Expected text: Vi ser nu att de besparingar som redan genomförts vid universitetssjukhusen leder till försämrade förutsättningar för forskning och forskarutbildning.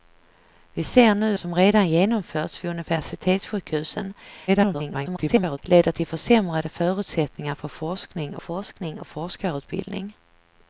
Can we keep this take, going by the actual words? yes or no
no